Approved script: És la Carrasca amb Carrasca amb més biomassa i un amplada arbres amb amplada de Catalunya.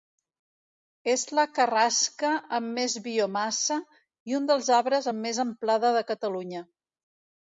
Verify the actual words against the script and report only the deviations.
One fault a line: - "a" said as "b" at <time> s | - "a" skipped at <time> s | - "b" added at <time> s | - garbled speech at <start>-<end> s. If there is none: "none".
- "Carrasca amb" skipped at 2.7 s
- "amplada" said as "dels" at 4.5 s
- "més" added at 5.3 s